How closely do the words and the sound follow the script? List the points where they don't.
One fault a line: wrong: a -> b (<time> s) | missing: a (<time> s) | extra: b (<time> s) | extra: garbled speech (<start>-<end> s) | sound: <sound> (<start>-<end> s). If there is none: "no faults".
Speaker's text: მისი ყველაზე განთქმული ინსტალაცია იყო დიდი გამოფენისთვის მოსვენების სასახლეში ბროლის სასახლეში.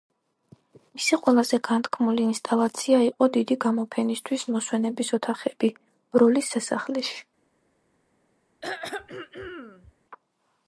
wrong: სასახლეში -> ოთახები (5.2 s)
sound: throat clearing (8.6-9.9 s)